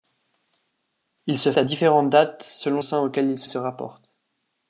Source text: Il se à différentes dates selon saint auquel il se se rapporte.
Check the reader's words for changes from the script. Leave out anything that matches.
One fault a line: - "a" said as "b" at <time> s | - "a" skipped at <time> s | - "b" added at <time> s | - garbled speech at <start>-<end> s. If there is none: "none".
none